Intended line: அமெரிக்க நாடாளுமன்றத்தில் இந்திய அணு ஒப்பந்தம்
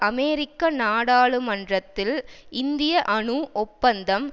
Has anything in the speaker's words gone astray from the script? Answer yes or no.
no